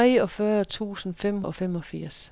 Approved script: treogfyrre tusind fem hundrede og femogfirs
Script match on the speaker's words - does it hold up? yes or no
no